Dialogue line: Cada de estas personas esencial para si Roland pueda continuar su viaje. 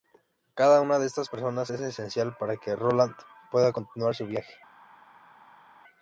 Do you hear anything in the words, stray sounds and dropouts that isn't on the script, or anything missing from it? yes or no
yes